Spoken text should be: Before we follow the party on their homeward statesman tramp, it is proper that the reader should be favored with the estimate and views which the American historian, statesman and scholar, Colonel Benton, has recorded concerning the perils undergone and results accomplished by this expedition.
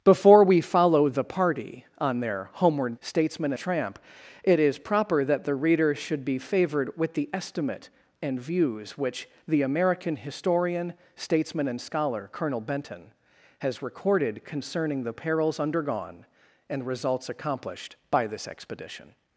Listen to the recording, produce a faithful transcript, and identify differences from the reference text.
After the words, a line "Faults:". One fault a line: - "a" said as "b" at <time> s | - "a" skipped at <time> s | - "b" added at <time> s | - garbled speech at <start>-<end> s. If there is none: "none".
Before we follow the party on their homeward statesman tramp, it is proper that the reader should be favored with the estimate and views which the American historian, statesman and scholar, Colonel Benton, has recorded concerning the perils undergone and results accomplished by this expedition.
Faults:
none